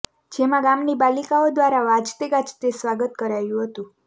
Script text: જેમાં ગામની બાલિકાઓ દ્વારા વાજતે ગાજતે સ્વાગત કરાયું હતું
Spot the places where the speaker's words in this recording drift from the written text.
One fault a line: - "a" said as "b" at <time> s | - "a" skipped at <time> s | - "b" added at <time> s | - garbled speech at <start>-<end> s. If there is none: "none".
none